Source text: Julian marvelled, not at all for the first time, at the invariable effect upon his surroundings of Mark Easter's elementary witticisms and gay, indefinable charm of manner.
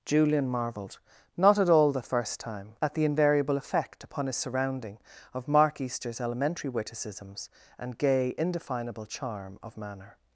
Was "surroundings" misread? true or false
true